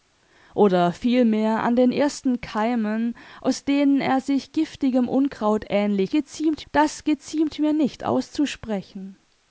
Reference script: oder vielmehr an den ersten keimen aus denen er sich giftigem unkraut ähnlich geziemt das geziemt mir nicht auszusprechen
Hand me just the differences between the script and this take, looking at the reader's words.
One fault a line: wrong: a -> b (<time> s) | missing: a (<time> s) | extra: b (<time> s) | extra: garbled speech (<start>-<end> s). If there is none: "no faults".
no faults